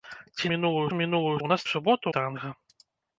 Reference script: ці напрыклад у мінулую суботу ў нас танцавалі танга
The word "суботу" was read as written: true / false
false